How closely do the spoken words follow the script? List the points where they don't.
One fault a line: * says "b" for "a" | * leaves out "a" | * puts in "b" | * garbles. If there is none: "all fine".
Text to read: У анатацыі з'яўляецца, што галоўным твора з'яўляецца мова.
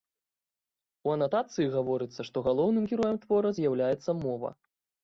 * says "гаворыцца" for "з'яўляецца"
* puts in "героем"